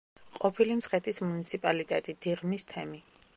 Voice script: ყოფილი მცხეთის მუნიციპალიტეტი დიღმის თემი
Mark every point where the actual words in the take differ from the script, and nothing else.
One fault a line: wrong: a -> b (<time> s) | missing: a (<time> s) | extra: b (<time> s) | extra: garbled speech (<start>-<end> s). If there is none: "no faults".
no faults